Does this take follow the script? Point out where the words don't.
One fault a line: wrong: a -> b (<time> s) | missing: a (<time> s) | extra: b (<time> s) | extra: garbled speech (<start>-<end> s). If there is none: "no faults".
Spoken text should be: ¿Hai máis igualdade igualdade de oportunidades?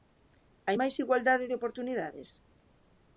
missing: igualdade (1.5 s)